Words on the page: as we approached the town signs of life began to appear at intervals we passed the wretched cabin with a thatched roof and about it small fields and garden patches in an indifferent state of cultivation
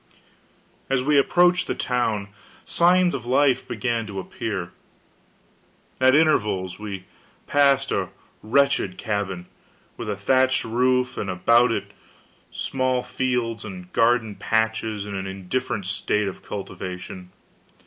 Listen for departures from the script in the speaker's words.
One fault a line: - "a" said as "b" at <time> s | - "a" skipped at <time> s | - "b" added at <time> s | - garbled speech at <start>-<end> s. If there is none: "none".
- "the" said as "a" at 7.9 s